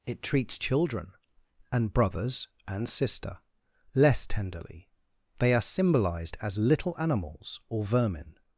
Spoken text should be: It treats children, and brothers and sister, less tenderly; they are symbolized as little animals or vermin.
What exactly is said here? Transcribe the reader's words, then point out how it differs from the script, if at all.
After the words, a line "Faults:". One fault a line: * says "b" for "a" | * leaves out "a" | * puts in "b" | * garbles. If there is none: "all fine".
It treats children, and brothers and sister, less tenderly; they are symbolized as little animals or vermin.
Faults:
all fine